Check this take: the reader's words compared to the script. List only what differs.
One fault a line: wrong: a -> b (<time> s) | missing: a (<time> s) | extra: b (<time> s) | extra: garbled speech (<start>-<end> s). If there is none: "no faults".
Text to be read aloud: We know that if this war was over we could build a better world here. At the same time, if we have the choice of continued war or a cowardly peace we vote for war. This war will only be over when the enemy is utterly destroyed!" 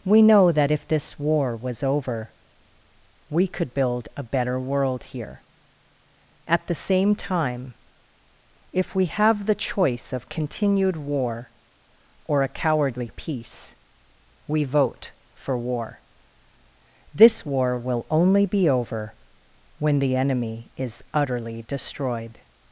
no faults